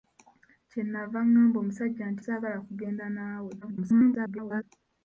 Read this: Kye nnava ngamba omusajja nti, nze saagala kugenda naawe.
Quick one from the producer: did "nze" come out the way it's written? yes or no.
no